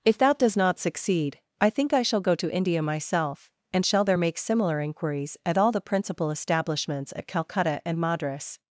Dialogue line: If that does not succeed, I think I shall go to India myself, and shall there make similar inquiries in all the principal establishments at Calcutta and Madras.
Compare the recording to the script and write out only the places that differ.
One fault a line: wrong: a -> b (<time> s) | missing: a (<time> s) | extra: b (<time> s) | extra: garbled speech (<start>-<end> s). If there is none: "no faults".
wrong: in -> at (5.4 s)